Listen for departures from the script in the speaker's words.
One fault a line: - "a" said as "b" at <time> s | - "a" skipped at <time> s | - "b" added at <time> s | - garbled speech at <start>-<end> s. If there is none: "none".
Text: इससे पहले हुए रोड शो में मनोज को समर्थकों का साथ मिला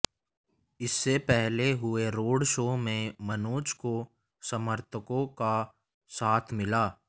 none